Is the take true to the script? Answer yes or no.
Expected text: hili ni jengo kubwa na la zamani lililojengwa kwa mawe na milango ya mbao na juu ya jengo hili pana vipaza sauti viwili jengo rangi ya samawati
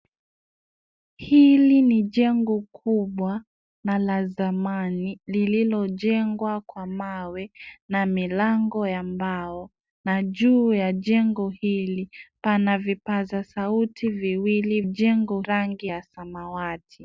yes